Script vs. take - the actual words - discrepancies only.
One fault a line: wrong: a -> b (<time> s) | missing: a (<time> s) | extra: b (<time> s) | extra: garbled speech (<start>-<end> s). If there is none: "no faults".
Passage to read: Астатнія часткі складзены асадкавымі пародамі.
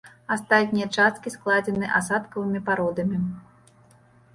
no faults